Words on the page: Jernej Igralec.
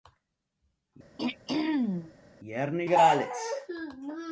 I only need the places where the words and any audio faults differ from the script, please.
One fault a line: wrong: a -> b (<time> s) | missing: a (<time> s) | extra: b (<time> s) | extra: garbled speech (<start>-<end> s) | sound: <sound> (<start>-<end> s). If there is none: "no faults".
sound: throat clearing (1.2-2.1 s)